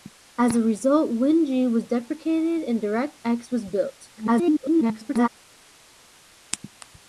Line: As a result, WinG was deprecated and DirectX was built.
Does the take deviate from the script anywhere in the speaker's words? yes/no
yes